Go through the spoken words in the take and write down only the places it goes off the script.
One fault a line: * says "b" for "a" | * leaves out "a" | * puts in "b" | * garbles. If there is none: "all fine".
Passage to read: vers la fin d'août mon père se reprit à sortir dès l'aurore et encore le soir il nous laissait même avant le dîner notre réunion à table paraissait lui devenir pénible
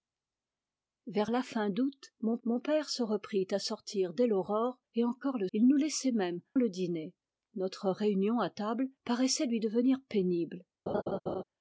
* puts in "mon"
* leaves out "soir"
* leaves out "avant"